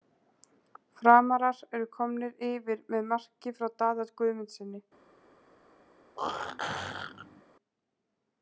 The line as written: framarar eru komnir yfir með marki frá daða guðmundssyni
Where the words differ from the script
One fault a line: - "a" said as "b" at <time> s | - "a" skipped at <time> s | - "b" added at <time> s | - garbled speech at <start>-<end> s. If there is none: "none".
none